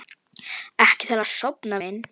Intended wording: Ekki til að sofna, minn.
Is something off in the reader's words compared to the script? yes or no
no